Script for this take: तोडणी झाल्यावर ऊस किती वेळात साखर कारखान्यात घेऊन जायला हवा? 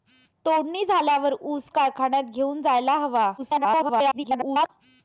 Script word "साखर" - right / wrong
wrong